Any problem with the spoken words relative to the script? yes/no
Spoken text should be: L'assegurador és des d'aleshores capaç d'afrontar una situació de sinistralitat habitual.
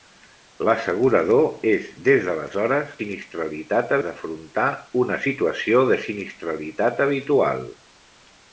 yes